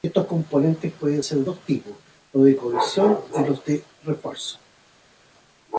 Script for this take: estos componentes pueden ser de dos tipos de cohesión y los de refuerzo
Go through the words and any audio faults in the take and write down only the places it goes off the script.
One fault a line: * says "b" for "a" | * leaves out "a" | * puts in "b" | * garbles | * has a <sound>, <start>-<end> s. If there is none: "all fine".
* puts in "los"